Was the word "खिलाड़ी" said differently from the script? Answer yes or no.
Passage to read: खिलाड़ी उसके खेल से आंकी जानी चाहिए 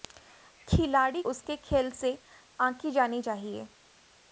no